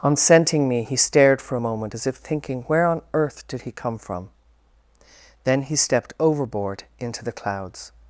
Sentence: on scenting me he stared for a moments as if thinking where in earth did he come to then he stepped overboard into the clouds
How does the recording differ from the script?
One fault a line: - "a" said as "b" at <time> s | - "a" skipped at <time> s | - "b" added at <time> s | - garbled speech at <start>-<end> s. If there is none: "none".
- "moments" said as "moment" at 1.6 s
- "in" said as "on" at 2.9 s
- "to" said as "from" at 4.0 s